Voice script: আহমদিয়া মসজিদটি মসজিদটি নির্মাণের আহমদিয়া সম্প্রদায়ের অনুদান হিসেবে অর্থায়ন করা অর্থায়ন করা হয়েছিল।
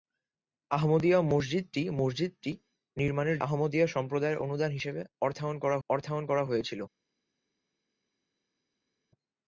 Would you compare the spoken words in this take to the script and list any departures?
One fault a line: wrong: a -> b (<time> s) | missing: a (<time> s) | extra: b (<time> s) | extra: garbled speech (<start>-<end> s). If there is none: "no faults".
no faults